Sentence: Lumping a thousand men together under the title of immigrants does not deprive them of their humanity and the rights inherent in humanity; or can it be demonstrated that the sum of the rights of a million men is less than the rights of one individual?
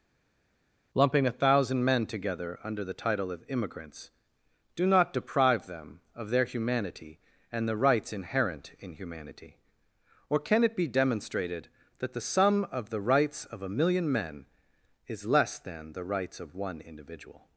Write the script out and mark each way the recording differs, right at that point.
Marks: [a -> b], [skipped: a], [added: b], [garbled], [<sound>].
Lumping a thousand men together under the title of immigrants [does -> do] not deprive them of their humanity and the rights inherent in humanity; or can it be demonstrated that the sum of the rights of a million men is less than the rights of one individual?